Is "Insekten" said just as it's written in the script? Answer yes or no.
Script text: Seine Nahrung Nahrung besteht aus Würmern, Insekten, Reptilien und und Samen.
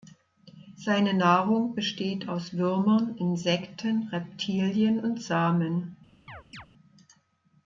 yes